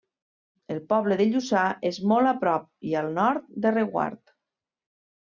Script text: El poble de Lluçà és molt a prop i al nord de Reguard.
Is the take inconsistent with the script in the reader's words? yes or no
no